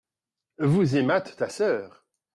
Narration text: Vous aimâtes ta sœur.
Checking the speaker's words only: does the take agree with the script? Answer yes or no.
yes